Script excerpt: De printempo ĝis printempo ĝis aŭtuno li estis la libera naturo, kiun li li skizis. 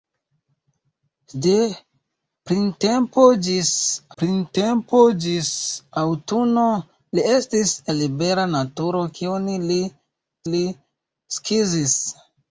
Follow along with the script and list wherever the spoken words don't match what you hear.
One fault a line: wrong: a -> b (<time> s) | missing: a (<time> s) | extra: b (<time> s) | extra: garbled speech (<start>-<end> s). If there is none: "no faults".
no faults